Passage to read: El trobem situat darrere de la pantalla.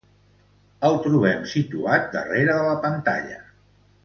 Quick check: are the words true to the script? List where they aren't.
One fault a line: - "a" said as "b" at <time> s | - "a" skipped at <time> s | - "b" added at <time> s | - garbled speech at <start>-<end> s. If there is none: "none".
none